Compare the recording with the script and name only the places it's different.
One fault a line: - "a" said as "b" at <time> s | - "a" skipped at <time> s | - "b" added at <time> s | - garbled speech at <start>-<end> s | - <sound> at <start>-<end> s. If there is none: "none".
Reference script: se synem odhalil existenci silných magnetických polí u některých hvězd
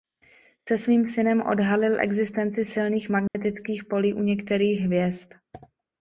- "svým" added at 0.7 s
- dropout at 3.3-3.3 s